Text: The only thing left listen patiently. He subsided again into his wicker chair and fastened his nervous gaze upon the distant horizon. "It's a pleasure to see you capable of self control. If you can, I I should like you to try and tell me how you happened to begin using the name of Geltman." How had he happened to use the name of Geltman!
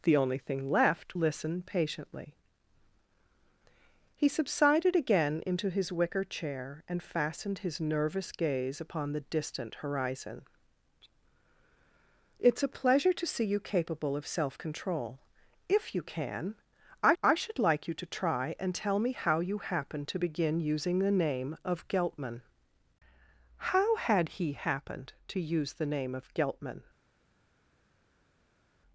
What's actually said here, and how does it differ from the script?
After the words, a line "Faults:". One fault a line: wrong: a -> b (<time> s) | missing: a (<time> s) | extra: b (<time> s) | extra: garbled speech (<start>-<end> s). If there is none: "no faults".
The only thing left listen patiently. He subsided again into his wicker chair and fastened his nervous gaze upon the distant horizon. "It's a pleasure to see you capable of self control. If you can, I I should like you to try and tell me how you happened to begin using the name of Geltman." How had he happened to use the name of Geltman!
Faults:
no faults